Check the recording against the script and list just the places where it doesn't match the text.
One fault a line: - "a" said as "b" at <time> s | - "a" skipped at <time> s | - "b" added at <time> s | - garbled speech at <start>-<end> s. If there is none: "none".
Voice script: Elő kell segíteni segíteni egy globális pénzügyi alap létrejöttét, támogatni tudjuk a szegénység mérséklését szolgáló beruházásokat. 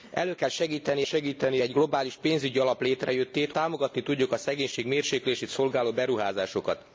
none